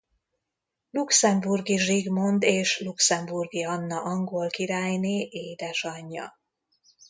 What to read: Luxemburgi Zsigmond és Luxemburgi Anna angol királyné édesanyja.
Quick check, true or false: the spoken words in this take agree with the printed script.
true